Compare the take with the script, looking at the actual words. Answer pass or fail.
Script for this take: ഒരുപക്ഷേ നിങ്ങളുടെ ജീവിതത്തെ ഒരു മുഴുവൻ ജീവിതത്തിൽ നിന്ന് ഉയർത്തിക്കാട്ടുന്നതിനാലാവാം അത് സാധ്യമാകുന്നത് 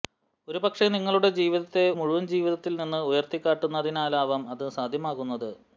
fail